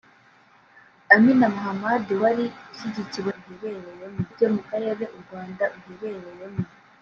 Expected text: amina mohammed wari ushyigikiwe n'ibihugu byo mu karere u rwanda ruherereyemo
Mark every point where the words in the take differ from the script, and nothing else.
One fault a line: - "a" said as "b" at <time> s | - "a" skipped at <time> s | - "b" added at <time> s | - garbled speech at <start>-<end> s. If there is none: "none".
- "n'ibihugu" said as "ruherereyemo" at 3.3 s